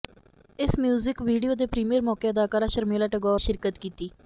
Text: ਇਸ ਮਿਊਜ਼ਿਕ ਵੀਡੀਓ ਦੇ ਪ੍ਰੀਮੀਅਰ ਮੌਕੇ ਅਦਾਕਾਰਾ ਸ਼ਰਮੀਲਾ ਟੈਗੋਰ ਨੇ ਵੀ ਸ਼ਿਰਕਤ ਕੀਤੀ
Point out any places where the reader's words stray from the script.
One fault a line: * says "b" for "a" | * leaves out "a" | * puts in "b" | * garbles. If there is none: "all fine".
* leaves out "ਨੇ ਵੀ"